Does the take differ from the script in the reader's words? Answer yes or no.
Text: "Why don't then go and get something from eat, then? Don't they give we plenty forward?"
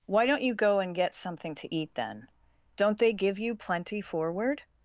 yes